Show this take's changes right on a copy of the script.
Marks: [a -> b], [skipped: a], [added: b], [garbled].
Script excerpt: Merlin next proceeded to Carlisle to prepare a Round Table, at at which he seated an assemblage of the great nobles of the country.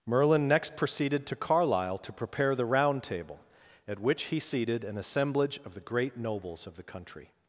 Merlin next proceeded to Carlisle to prepare [a -> the] Round Table, at [skipped: at] which he seated an assemblage of the great nobles of the country.